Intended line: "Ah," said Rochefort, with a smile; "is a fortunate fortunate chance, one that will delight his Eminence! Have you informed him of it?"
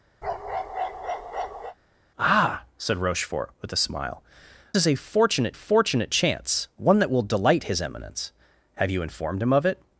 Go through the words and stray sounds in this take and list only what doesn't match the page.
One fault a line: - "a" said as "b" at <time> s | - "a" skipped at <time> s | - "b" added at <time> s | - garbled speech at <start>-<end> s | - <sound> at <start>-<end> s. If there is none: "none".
- bark at 0.2-1.8 s